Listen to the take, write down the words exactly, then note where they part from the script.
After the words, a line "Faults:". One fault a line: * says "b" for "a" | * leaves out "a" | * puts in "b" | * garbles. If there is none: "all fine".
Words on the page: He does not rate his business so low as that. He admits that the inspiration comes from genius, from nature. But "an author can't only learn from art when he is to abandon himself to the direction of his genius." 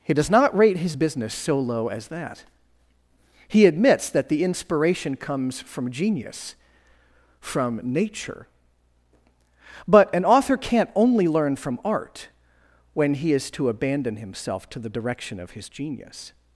He does not rate his business so low as that. He admits that the inspiration comes from genius, from nature. But "an author can't only learn from art when he is to abandon himself to the direction of his genius."
Faults:
all fine